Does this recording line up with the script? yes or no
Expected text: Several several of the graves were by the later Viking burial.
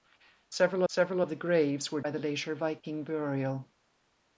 yes